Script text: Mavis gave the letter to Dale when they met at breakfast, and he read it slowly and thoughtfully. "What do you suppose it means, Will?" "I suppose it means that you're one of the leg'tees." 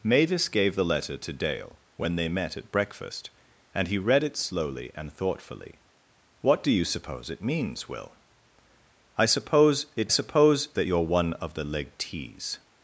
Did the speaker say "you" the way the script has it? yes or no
yes